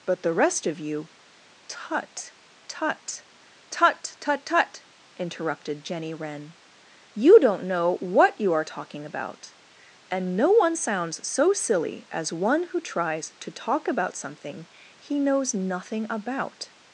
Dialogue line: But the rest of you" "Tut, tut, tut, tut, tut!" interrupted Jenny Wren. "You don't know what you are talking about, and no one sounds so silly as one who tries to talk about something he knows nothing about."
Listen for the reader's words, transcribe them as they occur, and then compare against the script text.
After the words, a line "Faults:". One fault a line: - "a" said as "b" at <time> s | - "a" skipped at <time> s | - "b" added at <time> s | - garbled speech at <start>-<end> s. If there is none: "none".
But the rest of you" "Tut, tut, tut, tut, tut!" interrupted Jenny Wren. "You don't know what you are talking about, and no one sounds so silly as one who tries to talk about something he knows nothing about."
Faults:
none